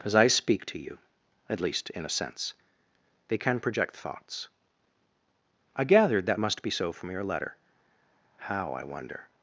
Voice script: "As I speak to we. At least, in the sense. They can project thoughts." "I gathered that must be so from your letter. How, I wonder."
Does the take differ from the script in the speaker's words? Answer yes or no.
yes